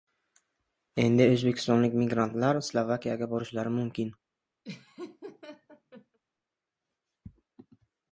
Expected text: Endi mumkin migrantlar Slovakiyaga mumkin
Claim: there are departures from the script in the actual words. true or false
true